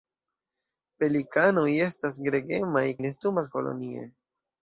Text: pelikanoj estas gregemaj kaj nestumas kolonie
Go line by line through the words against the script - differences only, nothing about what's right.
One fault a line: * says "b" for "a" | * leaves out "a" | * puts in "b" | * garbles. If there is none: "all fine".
* leaves out "kaj"